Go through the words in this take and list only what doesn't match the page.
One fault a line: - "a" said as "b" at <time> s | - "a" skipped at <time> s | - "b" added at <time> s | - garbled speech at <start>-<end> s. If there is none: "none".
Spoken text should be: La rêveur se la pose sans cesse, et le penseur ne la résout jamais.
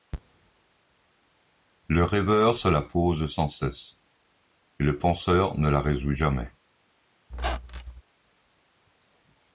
- "La" said as "Le" at 1.9 s